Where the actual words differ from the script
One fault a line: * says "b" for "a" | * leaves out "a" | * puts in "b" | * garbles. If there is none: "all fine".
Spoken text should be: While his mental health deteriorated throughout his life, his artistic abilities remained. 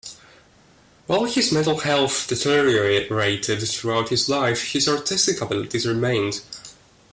all fine